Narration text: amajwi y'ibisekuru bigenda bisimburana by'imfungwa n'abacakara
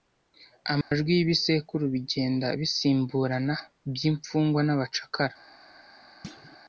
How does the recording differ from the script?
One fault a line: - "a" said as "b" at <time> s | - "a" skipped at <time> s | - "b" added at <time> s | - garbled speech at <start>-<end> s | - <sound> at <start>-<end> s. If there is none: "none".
- dropout at 0.8-0.9 s
- thud at 6.2-6.6 s